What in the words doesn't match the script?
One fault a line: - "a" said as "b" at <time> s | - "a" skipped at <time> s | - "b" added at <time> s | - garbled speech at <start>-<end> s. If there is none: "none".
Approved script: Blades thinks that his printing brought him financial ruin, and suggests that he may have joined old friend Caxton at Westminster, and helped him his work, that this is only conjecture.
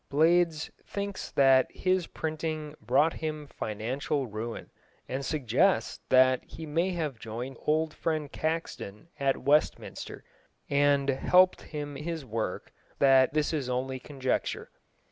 none